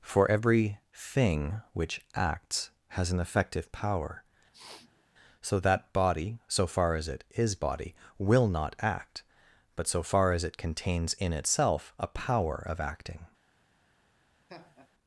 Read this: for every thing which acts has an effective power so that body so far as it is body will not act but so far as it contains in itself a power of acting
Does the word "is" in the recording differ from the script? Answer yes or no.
no